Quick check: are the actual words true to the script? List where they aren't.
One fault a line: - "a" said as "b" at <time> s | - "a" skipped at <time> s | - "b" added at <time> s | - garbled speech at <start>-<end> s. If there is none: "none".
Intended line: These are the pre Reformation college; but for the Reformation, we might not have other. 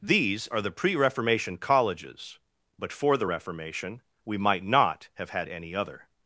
- "college" said as "colleges" at 1.6 s
- "had any" added at 5.3 s